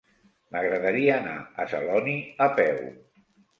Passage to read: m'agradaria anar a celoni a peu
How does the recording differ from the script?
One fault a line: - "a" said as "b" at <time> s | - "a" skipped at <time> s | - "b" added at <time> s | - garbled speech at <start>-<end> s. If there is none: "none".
none